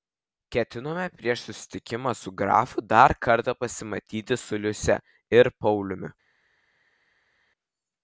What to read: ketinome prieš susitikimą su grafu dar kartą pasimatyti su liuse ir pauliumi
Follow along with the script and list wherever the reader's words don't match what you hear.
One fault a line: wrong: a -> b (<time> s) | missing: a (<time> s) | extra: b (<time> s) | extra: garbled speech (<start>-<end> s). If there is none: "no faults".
no faults